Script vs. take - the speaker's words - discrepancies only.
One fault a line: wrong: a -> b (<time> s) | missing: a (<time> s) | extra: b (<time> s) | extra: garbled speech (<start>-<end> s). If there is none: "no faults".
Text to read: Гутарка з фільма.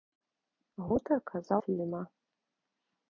no faults